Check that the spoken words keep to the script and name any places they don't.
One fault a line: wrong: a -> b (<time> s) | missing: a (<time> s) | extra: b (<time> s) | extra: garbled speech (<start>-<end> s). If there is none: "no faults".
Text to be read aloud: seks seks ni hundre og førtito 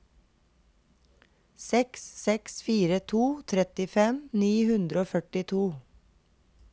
extra: fire to trettifem (2.7 s)